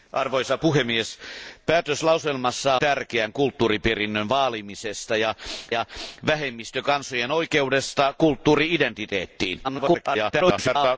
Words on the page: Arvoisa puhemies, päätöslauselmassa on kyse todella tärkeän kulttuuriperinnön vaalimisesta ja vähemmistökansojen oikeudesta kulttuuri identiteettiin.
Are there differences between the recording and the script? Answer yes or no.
yes